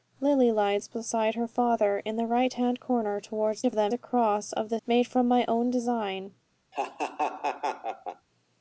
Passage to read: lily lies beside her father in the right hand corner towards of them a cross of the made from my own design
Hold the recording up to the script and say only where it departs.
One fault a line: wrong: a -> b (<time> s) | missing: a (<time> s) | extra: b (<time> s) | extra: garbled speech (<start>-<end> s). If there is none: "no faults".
no faults